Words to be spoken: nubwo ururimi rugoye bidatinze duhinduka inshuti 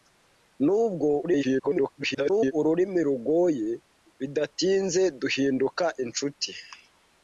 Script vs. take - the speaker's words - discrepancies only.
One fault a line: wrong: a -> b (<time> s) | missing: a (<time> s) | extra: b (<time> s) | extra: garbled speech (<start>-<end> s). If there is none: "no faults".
extra: garbled speech (1.2-2.5 s)